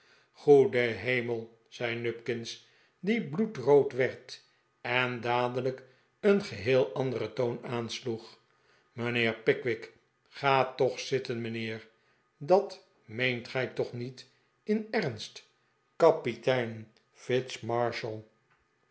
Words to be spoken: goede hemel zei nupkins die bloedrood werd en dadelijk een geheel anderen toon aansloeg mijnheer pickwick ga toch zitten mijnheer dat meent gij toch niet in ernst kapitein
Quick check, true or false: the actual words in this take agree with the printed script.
true